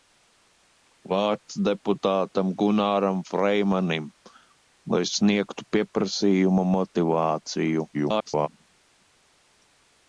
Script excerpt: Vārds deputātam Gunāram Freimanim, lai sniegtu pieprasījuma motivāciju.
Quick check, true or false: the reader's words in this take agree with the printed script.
false